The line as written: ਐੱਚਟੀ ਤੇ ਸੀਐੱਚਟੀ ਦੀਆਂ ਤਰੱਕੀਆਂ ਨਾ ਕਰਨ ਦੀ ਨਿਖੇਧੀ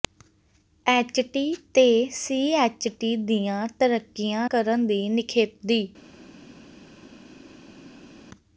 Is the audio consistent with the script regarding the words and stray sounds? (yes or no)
no